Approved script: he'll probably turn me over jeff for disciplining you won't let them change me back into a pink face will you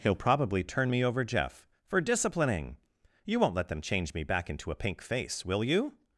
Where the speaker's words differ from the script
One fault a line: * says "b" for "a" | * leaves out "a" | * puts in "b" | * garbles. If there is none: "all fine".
all fine